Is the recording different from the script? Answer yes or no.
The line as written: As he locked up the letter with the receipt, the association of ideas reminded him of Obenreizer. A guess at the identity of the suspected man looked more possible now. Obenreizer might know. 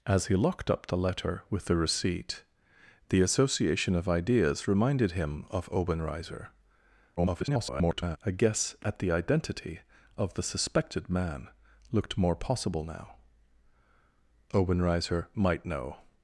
yes